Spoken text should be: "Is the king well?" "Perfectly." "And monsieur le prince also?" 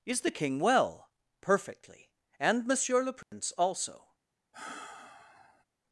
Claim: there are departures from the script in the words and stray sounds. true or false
true